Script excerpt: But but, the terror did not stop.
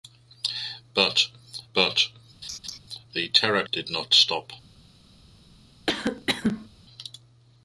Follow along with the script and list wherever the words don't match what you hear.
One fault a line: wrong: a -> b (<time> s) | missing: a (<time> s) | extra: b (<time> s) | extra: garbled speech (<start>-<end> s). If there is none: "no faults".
no faults